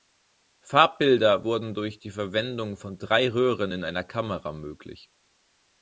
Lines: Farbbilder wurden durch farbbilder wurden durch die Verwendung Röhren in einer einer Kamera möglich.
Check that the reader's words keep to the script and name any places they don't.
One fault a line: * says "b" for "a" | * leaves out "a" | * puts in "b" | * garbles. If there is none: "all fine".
* says "die Verwendung von drei" for "farbbilder wurden durch die Verwendung"
* leaves out "einer"